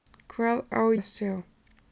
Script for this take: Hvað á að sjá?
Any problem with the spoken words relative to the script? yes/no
no